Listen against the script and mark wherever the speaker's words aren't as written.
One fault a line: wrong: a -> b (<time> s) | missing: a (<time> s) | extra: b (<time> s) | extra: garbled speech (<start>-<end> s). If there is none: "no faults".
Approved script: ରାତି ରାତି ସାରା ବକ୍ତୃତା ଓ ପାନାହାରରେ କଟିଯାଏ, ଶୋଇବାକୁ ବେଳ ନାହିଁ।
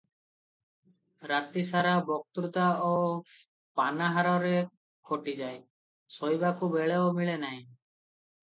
missing: ରାତି (1.6 s)
extra: ମିଳେ (7.1 s)